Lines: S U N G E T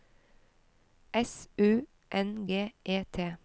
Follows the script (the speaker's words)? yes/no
yes